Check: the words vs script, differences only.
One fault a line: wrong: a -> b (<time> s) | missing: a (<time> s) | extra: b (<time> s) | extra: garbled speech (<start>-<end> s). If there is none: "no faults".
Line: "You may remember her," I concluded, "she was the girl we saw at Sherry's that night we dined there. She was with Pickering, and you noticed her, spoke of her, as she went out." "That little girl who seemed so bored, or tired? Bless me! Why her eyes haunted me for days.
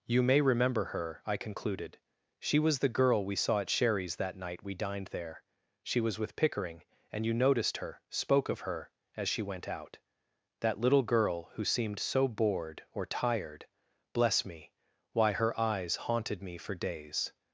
no faults